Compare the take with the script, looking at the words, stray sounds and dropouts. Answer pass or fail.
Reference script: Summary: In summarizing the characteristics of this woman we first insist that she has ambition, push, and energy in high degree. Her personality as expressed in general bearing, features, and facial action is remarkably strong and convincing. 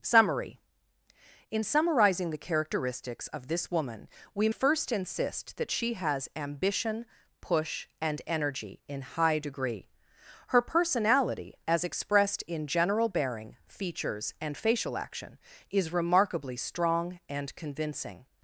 pass